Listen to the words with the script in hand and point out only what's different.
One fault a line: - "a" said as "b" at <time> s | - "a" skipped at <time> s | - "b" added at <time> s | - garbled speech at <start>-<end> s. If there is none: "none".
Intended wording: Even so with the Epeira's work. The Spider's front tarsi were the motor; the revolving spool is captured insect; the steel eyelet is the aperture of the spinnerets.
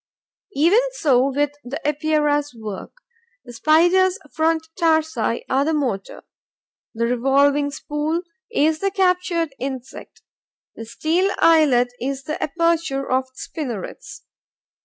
- "were" said as "are" at 5.5 s
- "the" added at 8.8 s